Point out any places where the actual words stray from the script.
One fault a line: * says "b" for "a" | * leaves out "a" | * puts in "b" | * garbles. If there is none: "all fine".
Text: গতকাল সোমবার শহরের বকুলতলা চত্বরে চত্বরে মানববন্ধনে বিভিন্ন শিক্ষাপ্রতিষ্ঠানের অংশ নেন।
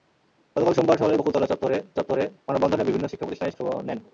all fine